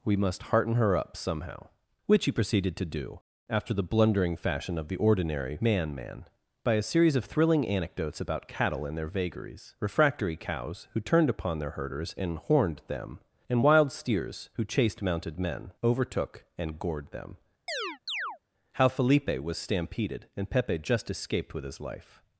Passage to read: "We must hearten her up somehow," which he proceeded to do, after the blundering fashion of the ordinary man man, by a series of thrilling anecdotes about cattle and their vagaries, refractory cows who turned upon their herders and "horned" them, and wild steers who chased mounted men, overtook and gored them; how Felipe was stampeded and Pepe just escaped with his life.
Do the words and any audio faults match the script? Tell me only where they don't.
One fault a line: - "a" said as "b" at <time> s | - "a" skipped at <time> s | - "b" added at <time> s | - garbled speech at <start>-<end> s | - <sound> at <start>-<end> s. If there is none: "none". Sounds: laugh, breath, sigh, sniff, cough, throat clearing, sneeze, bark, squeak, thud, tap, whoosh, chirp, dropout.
- chirp at 17.7-18.4 s